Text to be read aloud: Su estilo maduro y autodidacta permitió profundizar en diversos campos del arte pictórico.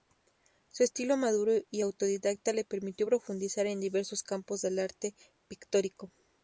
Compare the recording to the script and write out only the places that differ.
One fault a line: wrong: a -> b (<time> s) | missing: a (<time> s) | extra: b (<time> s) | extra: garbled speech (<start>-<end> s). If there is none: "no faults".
extra: le (2.5 s)